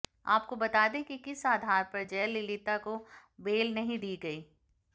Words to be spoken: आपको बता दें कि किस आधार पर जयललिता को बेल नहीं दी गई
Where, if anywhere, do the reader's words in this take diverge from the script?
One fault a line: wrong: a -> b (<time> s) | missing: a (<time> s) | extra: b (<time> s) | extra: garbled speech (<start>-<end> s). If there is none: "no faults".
no faults